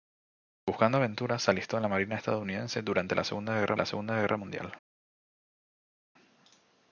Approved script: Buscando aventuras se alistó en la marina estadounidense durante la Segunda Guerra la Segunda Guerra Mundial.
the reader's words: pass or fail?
pass